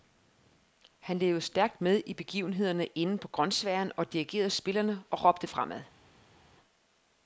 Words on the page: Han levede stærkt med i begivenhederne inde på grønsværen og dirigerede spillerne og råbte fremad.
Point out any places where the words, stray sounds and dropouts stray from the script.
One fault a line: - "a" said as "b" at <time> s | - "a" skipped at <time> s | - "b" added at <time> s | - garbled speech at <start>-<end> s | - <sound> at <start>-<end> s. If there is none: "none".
none